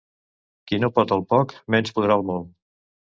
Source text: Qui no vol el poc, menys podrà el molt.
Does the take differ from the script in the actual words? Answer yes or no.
yes